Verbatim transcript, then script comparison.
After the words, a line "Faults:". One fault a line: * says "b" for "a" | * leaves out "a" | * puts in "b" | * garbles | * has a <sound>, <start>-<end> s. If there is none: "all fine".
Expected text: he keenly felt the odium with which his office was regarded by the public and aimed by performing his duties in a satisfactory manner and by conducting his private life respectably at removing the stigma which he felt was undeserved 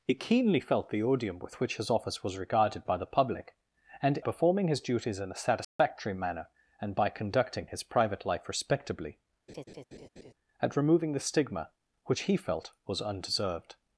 he keenly felt the odium with which his office was regarded by the public and performing his duties in a satisfactory manner and by conducting his private life respectably at removing the stigma which he felt was undeserved
Faults:
* leaves out "aimed by"
* has a dropout, 5.6-5.8 s
* has a laugh, 9.5-10.3 s